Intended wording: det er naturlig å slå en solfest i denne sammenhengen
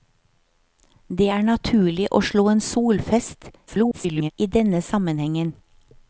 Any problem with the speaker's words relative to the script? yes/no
yes